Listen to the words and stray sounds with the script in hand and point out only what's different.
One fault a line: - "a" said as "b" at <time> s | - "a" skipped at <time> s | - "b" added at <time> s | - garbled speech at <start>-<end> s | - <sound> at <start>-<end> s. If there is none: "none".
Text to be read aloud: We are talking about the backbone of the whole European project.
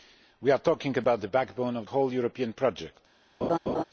- "the" skipped at 1.9 s
- laugh at 3.4-3.8 s